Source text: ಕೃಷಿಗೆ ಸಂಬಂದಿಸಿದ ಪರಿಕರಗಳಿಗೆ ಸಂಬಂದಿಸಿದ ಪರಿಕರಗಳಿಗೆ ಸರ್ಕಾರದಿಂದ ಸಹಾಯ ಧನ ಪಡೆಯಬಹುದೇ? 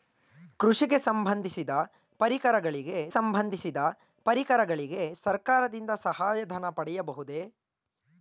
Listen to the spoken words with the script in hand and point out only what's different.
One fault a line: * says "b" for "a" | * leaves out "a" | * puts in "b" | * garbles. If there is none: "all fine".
all fine